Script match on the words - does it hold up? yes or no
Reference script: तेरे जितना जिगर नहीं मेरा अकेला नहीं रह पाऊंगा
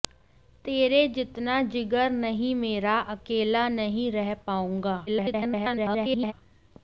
no